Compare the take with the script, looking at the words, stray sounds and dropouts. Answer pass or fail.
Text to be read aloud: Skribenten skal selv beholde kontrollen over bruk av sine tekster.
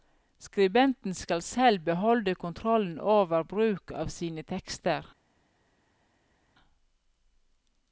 pass